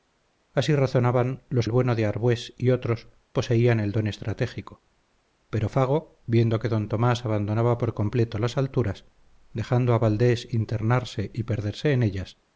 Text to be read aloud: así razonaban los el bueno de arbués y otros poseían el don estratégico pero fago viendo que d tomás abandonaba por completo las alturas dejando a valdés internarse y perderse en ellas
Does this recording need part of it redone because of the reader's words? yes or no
no